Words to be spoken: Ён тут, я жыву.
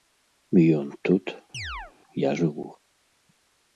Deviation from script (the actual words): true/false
false